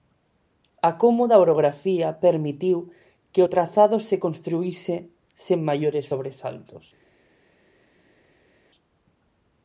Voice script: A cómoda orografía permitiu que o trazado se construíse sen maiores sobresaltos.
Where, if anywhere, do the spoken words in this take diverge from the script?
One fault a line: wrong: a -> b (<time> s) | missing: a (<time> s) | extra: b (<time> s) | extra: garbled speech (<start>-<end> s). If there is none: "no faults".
no faults